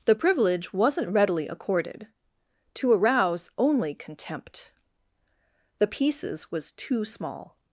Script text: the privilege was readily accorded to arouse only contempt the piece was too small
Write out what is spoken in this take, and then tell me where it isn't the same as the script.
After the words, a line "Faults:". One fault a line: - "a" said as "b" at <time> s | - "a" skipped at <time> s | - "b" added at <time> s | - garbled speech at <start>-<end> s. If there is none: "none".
the privilege wasn't readily accorded to arouse only contempt the pieces was too small
Faults:
- "was" said as "wasn't" at 0.7 s
- "piece" said as "pieces" at 5.9 s